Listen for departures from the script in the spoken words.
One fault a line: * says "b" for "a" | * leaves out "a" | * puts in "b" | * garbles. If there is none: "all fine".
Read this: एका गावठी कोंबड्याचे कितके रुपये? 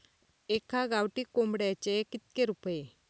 all fine